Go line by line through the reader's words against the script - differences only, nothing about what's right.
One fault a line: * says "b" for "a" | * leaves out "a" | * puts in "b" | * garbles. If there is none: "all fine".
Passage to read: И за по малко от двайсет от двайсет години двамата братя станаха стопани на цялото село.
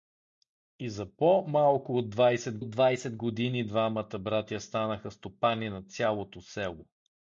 all fine